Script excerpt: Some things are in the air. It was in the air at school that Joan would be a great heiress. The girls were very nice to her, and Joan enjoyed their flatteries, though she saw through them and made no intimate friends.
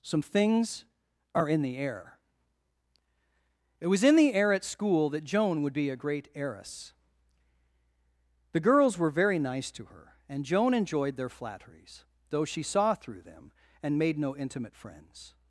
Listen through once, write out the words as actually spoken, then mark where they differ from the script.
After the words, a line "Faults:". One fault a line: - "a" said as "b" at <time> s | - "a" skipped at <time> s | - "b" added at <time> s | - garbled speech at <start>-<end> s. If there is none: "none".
Some things are in the air. It was in the air at school that Joan would be a great heiress. The girls were very nice to her, and Joan enjoyed their flatteries, though she saw through them and made no intimate friends.
Faults:
none